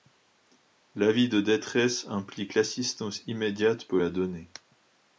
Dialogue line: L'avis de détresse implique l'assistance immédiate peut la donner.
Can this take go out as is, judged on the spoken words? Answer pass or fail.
pass